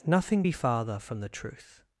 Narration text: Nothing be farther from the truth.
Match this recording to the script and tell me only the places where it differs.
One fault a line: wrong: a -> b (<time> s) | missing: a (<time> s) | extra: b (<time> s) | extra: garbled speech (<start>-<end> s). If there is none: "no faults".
no faults